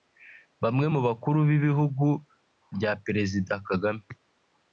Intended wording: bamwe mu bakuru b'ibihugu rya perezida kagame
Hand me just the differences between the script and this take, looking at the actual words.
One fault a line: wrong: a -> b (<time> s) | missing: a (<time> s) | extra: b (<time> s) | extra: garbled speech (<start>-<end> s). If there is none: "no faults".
no faults